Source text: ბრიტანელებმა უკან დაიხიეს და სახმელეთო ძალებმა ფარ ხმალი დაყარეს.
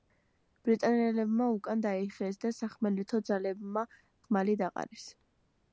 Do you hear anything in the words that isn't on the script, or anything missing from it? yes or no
yes